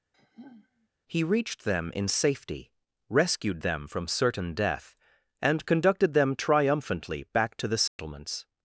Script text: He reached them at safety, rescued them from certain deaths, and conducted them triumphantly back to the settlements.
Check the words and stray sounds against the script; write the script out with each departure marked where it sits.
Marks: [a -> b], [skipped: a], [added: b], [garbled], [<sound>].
[sigh] He reached them [at -> in] safety, rescued them from certain [deaths, -> death] and conducted them triumphantly back to the settlements. [dropout]